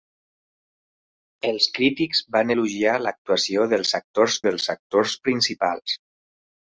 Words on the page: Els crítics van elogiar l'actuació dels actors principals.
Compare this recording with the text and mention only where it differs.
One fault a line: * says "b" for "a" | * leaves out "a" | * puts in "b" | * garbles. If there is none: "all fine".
* puts in "dels actors"